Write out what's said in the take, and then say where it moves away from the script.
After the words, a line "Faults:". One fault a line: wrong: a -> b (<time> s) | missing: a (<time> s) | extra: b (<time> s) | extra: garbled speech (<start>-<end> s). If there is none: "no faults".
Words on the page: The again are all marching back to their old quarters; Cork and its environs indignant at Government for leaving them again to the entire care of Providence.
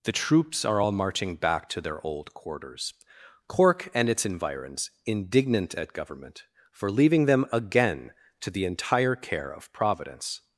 The troops are all marching back to their old quarters; Cork and its environs indignant at Government for leaving them again to the entire care of Providence.
Faults:
wrong: again -> troops (0.1 s)